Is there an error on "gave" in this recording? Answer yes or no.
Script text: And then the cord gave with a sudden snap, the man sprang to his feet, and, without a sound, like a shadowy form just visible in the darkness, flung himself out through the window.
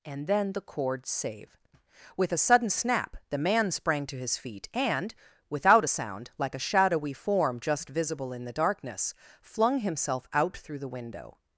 yes